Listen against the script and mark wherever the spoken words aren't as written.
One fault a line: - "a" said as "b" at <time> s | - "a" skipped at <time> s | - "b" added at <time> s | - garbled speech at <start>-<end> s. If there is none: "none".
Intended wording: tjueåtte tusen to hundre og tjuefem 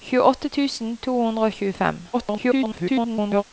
- garbled speech at 2.1-3.4 s